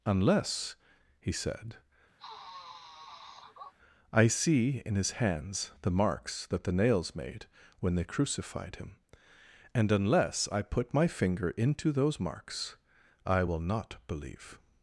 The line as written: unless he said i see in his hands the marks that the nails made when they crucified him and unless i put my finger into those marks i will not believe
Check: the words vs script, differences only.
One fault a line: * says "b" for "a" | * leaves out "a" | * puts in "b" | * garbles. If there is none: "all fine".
all fine